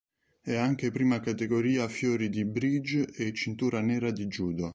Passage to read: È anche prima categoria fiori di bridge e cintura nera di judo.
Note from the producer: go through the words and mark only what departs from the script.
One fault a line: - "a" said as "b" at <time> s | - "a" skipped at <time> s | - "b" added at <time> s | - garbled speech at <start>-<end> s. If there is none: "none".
none